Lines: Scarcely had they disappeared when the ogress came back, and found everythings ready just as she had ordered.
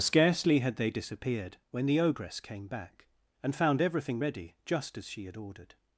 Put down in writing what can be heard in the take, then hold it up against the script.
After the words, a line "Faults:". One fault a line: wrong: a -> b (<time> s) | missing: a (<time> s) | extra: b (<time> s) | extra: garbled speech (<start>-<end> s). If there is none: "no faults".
Scarcely had they disappeared when the ogress came back, and found everything ready just as she had ordered.
Faults:
wrong: everythings -> everything (3.8 s)